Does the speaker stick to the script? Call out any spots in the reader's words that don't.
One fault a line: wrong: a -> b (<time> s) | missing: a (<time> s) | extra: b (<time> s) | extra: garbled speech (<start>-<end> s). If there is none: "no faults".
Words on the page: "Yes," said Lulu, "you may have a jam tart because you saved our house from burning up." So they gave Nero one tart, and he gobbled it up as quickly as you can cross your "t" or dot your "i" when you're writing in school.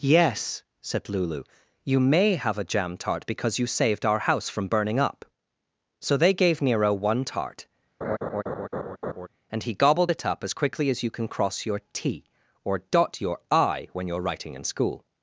no faults